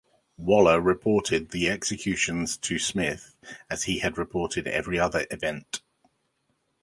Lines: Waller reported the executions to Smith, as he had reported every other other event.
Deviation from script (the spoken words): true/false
true